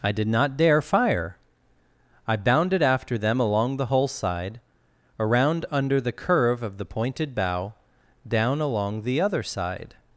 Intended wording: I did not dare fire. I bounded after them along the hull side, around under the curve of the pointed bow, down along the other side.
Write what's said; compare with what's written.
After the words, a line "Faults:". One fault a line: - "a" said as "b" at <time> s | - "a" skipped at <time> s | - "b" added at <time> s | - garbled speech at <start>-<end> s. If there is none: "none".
I did not dare fire. I bounded after them along the hull side, around under the curve of the pointed bow, down along the other side.
Faults:
none